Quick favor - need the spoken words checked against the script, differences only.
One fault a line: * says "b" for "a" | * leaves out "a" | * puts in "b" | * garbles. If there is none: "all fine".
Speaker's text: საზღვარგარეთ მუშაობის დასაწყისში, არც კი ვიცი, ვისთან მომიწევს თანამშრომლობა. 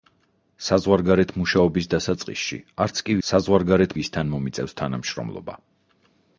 * says "საზღვარგარეთ" for "ვიცი"